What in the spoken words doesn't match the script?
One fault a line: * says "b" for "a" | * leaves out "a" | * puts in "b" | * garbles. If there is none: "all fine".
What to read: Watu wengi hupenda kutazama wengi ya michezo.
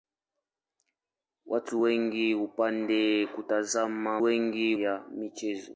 all fine